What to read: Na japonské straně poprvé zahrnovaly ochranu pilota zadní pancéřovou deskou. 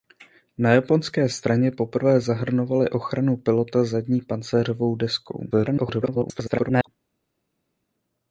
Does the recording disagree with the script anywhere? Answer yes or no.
yes